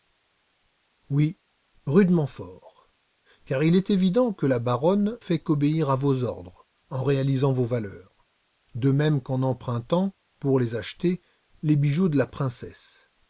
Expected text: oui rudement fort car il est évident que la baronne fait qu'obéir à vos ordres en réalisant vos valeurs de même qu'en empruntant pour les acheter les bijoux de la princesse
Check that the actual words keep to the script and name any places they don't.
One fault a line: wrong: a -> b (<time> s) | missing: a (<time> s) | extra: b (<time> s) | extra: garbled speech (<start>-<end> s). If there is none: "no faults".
no faults